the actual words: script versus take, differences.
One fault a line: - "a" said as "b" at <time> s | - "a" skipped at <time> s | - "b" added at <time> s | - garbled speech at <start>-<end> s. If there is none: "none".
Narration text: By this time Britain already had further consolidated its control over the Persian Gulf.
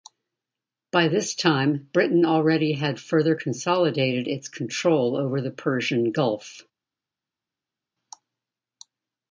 none